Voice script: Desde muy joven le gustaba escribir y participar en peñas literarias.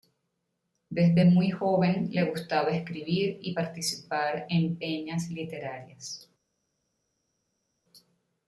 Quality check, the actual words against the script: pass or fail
pass